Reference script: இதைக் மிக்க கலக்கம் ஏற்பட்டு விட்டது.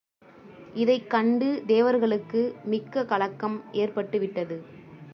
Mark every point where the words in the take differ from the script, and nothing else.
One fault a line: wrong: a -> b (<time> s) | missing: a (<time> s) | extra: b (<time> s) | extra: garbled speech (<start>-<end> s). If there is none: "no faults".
extra: கண்டு தேவர்களுக்கு (1.1 s)